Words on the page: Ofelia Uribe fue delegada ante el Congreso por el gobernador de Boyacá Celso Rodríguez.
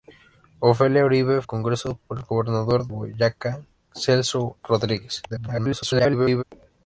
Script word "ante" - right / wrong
wrong